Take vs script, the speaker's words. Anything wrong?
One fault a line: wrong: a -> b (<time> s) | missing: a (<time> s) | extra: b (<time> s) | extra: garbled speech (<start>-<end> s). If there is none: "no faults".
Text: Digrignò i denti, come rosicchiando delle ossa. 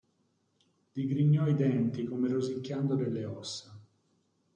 no faults